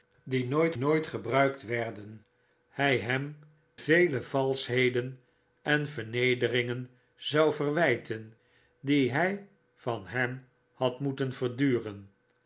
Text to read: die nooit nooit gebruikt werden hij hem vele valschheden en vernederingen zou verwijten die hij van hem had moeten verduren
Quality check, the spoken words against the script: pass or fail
pass